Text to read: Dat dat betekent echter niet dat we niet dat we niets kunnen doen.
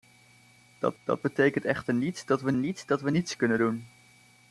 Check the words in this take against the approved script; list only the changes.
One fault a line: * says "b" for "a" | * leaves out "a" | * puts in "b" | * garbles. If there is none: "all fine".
all fine